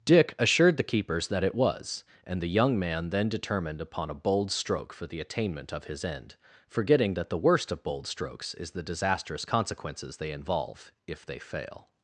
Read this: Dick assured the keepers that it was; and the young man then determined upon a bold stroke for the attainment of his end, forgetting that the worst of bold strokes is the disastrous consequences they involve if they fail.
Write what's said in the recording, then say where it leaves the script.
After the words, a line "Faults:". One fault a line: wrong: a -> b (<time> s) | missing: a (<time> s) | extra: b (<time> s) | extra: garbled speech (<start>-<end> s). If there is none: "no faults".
Dick assured the keepers that it was; and the young man then determined upon a bold stroke for the attainment of his end, forgetting that the worst of bold strokes is the disastrous consequences they involve if they fail.
Faults:
no faults